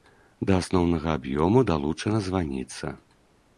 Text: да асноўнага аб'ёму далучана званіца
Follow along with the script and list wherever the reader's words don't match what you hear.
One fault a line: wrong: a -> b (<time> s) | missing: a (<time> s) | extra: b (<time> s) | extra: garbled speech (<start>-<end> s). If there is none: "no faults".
no faults